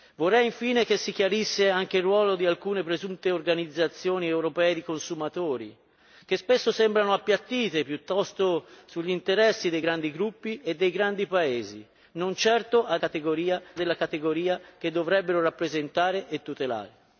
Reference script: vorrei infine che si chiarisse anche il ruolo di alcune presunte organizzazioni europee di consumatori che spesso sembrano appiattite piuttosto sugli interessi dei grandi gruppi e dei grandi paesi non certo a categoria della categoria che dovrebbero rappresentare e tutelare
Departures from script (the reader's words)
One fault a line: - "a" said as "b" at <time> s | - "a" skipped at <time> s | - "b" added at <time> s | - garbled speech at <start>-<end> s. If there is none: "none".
none